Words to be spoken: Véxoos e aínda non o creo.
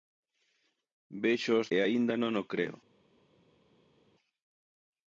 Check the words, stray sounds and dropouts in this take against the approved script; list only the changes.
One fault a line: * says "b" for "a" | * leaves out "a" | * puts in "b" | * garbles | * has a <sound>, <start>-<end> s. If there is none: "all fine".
all fine